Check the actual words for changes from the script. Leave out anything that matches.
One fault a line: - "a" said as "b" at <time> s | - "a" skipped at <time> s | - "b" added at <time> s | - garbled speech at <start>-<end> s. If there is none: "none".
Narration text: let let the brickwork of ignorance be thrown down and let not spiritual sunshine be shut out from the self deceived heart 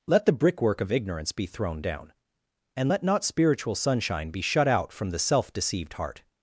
- "let" skipped at 0.2 s